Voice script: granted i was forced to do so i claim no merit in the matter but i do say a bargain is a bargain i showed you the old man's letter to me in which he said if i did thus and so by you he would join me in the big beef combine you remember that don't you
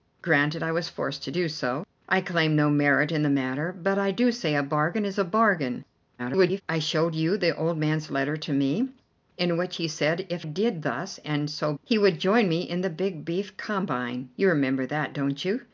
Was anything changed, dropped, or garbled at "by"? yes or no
yes